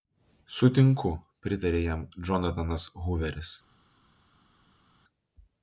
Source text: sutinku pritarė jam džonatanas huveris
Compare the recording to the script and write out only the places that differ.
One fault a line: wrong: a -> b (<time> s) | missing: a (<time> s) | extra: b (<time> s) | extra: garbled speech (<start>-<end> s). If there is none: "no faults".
no faults